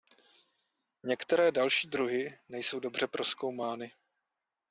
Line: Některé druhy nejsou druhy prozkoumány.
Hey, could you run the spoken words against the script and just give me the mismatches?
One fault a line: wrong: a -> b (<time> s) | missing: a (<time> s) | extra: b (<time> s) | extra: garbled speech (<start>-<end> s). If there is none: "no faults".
extra: další (1.5 s)
wrong: druhy -> dobře (2.8 s)